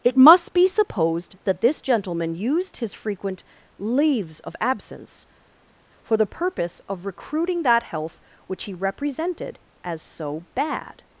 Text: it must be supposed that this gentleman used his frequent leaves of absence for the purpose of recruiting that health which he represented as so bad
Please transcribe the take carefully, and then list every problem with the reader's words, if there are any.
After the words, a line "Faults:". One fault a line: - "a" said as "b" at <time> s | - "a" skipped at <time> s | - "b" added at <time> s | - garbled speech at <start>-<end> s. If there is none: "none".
it must be supposed that this gentleman used his frequent leaves of absence for the purpose of recruiting that health which he represented as so bad
Faults:
none